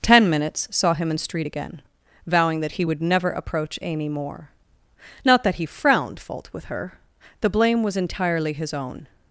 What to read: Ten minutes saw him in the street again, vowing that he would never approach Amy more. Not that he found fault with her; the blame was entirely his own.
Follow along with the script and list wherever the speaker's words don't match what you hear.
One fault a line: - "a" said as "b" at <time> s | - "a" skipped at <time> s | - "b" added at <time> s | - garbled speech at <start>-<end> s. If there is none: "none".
- "the" skipped at 1.2 s
- "found" said as "frowned" at 5.6 s